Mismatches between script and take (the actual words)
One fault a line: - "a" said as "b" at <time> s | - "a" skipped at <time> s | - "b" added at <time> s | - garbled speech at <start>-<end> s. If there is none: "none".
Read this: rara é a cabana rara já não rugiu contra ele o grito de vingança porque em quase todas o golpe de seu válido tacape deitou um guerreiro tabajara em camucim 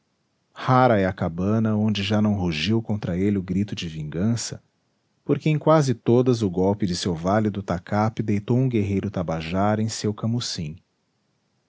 - "rara" said as "onde" at 1.8 s
- "seu" added at 9.9 s